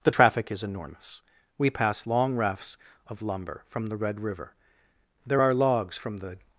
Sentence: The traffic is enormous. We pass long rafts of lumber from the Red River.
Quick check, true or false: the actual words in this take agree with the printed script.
false